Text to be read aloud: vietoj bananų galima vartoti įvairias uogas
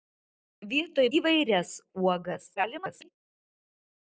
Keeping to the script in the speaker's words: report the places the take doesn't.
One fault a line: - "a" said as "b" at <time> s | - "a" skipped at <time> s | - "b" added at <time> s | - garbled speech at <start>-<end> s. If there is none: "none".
- "bananų galima vartoti" skipped at 1.0 s
- garbled speech at 2.6-3.1 s